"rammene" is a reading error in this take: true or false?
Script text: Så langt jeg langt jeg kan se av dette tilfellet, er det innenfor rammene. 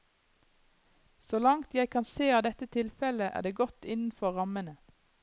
false